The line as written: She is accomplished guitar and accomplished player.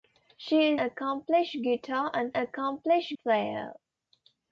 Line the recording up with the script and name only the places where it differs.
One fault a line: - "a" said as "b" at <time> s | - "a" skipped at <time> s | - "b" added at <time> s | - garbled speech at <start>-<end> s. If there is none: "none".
none